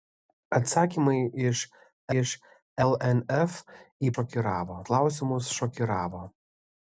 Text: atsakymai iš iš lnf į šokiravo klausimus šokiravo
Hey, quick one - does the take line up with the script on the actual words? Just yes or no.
yes